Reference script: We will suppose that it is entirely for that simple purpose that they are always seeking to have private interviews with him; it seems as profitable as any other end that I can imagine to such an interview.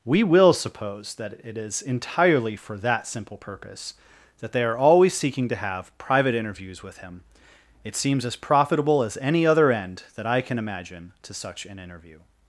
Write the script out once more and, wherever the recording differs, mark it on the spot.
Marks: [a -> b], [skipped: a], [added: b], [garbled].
We will suppose that it is entirely for that simple purpose that they are always seeking to have private interviews with him; it seems as profitable as any other end that I can imagine to such an interview.